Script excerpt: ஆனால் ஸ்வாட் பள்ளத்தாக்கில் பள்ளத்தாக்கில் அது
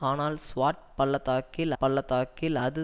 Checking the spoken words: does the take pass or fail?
pass